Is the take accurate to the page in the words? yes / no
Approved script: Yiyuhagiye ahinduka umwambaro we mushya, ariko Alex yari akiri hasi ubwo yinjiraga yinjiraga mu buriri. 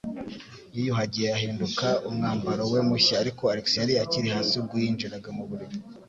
no